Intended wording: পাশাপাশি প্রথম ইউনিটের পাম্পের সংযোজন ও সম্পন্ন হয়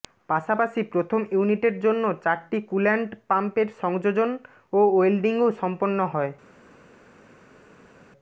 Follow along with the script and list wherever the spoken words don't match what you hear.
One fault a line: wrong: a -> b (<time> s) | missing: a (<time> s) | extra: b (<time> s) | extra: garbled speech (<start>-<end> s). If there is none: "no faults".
extra: জন্য চারটি কুল্যান্ট (1.8 s)
extra: ওয়েল্ডিংও (4.9 s)